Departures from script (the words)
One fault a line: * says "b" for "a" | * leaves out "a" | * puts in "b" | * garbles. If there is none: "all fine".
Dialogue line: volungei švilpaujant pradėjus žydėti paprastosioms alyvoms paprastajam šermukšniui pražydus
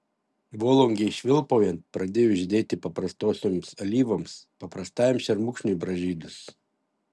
all fine